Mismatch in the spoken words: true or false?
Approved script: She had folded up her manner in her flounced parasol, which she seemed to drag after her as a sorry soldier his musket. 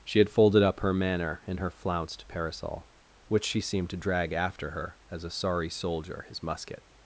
false